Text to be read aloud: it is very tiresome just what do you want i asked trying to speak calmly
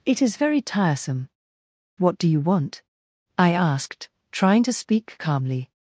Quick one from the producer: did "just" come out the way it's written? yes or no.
no